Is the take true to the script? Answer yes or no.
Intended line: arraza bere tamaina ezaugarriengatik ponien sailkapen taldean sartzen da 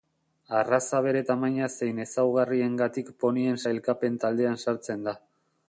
no